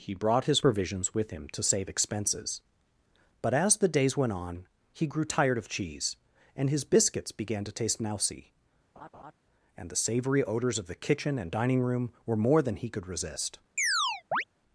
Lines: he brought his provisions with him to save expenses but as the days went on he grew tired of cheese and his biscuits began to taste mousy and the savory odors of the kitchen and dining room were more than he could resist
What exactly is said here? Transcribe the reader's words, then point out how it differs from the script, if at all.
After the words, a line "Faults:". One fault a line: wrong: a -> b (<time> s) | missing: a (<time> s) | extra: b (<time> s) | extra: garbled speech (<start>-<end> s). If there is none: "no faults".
he brought his provisions with him to save expenses but as the days went on he grew tired of cheese and his biscuits began to taste mousy and the savory odors of the kitchen and dining room were more than he could resist
Faults:
no faults